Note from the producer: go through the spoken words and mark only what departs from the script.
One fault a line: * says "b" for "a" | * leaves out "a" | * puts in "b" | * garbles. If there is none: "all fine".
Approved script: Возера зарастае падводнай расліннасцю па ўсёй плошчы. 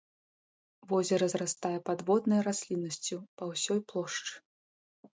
all fine